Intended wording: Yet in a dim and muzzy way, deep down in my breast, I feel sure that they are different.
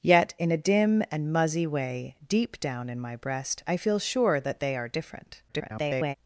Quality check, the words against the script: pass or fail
fail